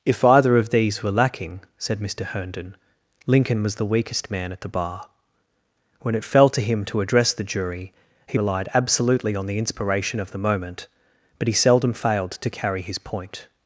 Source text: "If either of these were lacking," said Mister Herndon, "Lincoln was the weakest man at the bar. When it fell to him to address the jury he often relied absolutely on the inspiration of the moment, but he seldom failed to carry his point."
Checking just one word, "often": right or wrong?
wrong